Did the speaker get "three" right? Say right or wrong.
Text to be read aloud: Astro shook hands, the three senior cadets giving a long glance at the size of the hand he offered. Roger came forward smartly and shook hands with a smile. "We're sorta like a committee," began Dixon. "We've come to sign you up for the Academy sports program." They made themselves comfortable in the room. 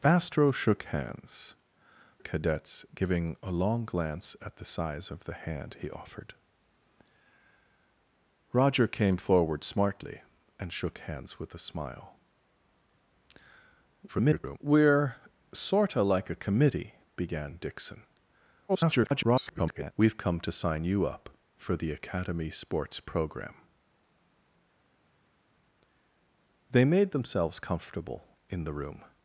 wrong